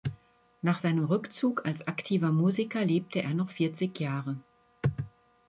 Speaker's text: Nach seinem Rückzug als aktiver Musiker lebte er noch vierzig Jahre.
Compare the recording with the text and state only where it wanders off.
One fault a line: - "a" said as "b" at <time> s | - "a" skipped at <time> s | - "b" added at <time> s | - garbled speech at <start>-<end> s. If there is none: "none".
none